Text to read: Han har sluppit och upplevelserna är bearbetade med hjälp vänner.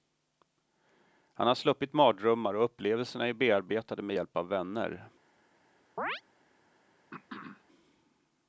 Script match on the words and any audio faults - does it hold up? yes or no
no